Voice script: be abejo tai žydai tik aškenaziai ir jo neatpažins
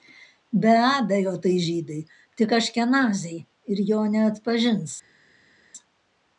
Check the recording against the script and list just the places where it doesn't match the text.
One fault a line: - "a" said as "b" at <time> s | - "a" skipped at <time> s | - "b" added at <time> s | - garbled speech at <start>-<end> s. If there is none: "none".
none